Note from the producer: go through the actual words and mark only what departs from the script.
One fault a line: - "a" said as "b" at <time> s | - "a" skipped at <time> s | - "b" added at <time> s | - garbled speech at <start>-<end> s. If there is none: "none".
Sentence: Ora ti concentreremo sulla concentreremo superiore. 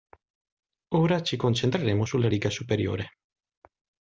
- "ti" said as "ci" at 1.2 s
- "concentreremo" said as "riga" at 2.3 s